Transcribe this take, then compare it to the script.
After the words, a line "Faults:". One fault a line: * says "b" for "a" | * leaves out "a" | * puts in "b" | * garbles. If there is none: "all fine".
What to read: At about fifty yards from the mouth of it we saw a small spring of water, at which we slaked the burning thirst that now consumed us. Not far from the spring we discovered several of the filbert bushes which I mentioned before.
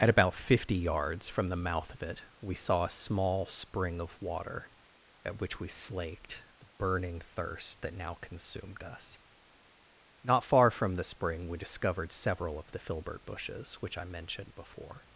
At about fifty yards from the mouth of it we saw a small spring of water, at which we slaked the burning thirst that now consumed us. Not far from the spring we discovered several of the filbert bushes which I mentioned before.
Faults:
all fine